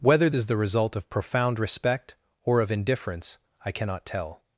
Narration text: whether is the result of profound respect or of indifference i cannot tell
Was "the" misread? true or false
false